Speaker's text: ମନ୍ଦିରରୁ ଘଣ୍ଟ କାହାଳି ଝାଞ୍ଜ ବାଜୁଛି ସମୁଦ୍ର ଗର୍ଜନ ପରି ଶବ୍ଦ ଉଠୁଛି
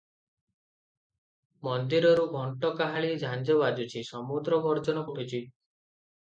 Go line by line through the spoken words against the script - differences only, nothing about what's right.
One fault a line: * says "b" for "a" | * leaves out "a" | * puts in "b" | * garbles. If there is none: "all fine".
* leaves out "ପରି ଶବ୍ଦ"